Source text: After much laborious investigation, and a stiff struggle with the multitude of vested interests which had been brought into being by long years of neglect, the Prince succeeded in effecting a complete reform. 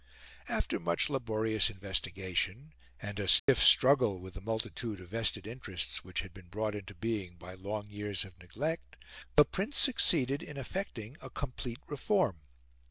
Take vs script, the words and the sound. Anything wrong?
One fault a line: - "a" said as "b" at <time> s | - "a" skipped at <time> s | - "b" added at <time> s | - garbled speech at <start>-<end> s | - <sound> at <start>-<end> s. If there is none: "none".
- dropout at 3.4-3.5 s